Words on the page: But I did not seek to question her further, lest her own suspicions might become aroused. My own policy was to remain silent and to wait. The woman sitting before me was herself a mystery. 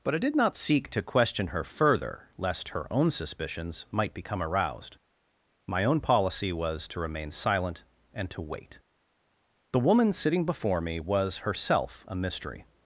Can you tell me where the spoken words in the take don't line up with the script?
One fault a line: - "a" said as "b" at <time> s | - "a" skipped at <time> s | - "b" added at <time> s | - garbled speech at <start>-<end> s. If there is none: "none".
none